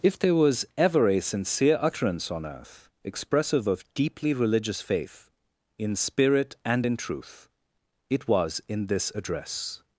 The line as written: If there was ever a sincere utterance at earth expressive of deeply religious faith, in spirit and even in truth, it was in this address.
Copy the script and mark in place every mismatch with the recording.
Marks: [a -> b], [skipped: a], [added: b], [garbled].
If there was ever a sincere utterance [at -> on] earth expressive of deeply religious faith, in spirit and [skipped: even] in truth, it was in this address.